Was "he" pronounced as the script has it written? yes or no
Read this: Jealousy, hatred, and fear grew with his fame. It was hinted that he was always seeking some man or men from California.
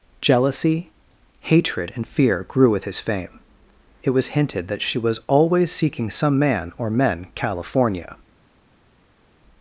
no